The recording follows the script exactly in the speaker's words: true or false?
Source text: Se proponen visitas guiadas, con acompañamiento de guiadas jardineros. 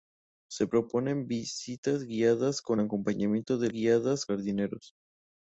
true